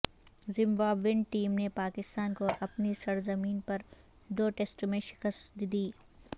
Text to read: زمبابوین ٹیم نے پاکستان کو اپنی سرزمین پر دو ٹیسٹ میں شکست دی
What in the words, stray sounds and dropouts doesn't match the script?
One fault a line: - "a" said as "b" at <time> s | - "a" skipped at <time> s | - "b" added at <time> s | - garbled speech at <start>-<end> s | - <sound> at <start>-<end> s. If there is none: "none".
none